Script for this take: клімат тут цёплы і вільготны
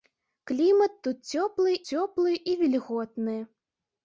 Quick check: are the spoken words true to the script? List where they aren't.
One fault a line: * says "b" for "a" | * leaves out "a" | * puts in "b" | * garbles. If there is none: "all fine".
* puts in "цёплы"